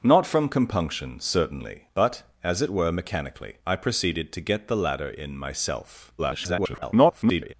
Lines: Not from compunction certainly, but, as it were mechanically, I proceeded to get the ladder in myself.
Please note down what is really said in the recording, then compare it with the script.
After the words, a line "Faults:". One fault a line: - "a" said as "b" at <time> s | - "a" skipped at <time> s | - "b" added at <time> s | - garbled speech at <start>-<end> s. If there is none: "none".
Not from compunction certainly, but, as it were mechanically, I proceeded to get the ladder in myself. [garbled]
Faults:
- garbled speech at 6.2-7.5 s